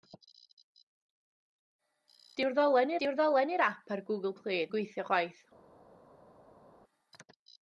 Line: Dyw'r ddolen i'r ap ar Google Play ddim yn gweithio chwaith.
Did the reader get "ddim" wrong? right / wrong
wrong